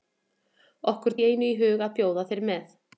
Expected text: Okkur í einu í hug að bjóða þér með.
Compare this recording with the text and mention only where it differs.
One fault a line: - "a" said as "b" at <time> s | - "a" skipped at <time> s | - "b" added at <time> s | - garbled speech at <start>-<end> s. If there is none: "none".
none